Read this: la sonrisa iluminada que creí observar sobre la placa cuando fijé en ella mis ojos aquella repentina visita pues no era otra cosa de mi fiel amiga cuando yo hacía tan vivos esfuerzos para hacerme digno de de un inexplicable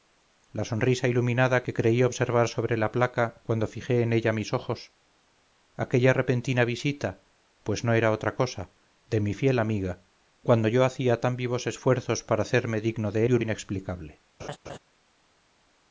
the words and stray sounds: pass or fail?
fail